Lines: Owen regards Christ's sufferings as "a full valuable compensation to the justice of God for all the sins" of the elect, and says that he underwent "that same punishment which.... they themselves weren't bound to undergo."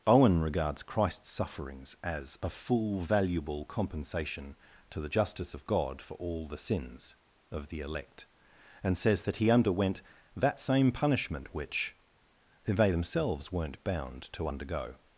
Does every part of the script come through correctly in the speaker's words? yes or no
yes